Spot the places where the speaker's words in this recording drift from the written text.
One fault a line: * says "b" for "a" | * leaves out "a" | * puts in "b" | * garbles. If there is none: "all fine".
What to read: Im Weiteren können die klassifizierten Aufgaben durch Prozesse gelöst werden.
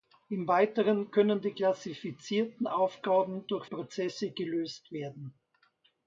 all fine